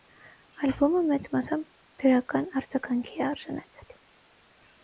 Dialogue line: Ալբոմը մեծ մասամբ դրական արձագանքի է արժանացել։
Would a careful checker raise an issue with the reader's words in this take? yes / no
no